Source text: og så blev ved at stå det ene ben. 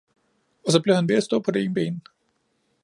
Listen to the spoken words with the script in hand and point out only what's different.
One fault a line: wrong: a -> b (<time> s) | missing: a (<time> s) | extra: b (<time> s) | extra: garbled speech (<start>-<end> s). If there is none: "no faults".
extra: han (0.9 s)
extra: på (1.4 s)